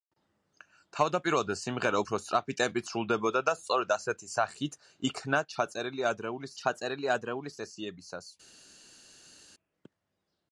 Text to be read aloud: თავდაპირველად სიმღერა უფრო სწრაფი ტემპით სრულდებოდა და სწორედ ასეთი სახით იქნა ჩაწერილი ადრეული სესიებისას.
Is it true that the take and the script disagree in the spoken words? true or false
true